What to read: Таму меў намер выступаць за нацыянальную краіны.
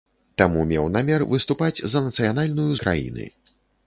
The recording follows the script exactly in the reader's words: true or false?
true